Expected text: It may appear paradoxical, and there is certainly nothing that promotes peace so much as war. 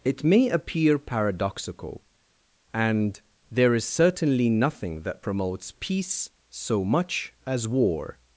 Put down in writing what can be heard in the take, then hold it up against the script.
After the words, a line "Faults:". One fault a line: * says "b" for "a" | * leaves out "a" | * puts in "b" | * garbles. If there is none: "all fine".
It may appear paradoxical, and there is certainly nothing that promotes peace so much as war.
Faults:
all fine